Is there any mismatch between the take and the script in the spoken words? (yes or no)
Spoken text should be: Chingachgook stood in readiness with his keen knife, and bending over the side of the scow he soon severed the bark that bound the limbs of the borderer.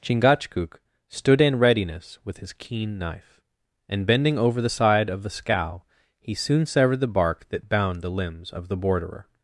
no